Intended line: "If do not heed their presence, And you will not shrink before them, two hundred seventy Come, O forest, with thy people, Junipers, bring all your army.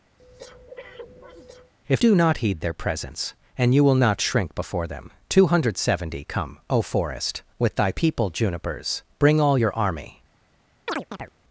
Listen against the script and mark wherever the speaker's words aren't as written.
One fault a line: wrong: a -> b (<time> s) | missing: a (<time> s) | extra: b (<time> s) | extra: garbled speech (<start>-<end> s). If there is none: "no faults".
no faults